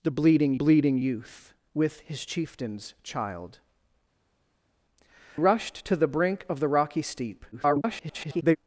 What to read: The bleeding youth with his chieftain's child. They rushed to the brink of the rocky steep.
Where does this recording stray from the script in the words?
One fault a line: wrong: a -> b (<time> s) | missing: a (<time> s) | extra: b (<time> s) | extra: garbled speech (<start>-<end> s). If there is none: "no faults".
extra: bleeding (0.5 s)
missing: They (3.6 s)
extra: garbled speech (7.5-8.6 s)